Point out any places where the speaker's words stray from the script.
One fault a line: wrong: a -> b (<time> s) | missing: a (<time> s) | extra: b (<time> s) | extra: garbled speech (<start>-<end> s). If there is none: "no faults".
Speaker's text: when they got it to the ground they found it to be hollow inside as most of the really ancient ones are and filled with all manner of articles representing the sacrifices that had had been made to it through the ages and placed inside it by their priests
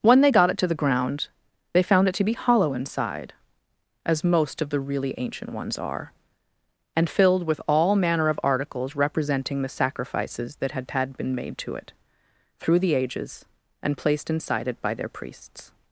no faults